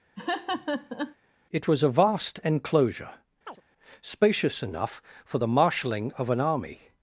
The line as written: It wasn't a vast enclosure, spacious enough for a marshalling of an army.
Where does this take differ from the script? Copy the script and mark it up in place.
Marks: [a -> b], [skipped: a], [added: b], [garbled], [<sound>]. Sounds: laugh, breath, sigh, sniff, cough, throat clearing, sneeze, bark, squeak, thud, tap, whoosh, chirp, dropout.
[laugh] It [wasn't -> was] a vast enclosure, [chirp] spacious enough for [a -> the] marshalling of an army.